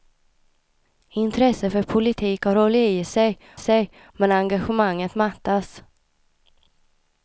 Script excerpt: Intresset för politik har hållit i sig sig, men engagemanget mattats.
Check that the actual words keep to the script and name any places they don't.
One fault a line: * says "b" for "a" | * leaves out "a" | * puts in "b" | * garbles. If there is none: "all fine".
all fine